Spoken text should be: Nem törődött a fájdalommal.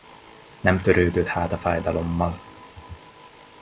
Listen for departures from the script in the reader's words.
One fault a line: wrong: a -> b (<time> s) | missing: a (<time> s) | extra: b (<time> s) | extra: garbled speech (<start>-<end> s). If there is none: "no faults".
extra: hát (1.3 s)